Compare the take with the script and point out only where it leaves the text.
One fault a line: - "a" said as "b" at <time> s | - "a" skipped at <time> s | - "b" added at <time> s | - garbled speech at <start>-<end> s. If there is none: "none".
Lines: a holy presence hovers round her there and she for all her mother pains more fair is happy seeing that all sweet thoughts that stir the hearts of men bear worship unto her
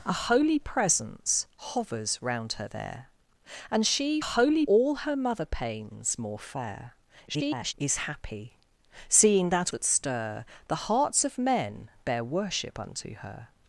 - "for" said as "holy" at 4.2 s
- garbled speech at 7.3-7.7 s
- "all sweet thoughts" skipped at 9.7 s